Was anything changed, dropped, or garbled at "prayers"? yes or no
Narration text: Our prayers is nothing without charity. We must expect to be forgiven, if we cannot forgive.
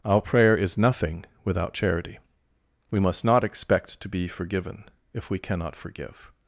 yes